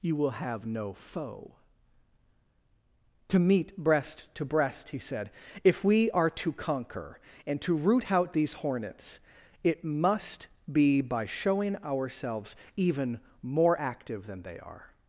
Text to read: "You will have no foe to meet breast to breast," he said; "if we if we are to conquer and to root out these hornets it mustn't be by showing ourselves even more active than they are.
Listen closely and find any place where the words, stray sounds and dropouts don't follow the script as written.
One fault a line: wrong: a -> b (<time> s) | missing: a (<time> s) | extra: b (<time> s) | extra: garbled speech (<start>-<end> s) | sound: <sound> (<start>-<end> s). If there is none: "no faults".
missing: if we (6.1 s)
wrong: mustn't -> must (9.8 s)